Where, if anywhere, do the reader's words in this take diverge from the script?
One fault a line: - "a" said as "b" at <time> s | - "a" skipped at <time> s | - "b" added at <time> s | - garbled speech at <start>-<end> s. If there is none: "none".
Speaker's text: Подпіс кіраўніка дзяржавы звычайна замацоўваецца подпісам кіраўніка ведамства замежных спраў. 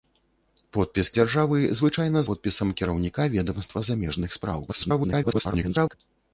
- "кіраўніка" skipped at 1.1 s
- "замацоўваецца" skipped at 2.2 s
- garbled speech at 4.7-5.9 s